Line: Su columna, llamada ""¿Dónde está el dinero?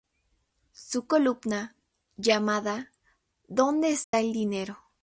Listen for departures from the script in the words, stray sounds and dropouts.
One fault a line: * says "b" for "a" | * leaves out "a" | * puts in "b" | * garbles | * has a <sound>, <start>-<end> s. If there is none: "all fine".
* has a dropout, 4.0-4.1 s